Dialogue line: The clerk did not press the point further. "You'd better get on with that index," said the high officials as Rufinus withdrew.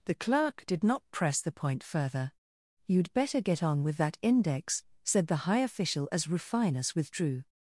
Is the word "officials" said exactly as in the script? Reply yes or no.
no